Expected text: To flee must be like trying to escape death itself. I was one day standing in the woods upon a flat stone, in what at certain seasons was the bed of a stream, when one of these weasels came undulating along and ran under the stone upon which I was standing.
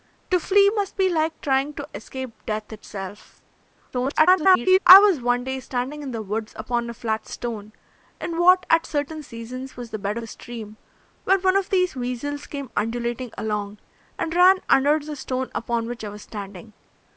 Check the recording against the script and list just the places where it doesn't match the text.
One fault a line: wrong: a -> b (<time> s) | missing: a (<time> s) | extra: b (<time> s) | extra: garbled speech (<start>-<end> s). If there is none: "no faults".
extra: garbled speech (3.9-4.8 s)
missing: of (10.2 s)